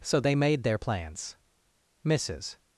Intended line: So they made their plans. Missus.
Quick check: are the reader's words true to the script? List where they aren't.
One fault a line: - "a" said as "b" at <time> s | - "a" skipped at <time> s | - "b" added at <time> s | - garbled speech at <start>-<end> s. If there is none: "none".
none